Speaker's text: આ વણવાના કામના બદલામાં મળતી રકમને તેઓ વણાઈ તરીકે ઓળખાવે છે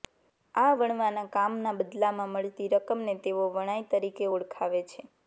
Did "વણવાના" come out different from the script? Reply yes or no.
no